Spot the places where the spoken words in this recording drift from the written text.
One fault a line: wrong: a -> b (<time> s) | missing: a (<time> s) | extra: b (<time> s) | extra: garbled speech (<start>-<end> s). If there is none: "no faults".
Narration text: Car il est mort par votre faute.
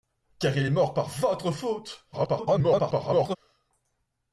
extra: garbled speech (2.1-3.4 s)